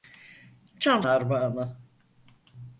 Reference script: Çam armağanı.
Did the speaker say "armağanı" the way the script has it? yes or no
yes